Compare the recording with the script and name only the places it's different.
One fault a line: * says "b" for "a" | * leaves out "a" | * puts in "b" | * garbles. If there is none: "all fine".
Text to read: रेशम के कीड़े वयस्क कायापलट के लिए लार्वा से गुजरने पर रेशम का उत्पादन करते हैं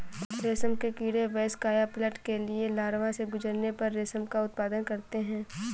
all fine